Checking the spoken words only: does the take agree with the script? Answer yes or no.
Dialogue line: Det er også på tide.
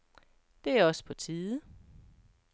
yes